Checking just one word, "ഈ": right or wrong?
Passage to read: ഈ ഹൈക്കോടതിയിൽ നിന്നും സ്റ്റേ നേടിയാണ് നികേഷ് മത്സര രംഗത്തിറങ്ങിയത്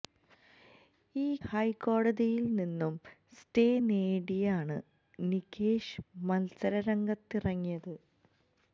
right